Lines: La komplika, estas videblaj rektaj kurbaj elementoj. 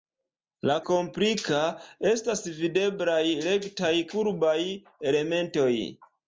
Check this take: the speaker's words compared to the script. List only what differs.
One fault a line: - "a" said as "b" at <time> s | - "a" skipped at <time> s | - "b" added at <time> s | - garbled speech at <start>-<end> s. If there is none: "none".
none